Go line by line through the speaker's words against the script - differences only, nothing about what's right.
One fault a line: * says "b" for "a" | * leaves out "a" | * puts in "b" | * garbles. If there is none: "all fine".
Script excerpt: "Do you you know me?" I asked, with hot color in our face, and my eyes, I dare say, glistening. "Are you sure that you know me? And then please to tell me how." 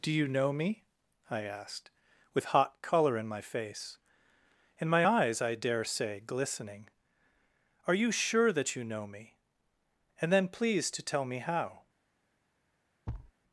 * leaves out "you"
* says "my" for "our"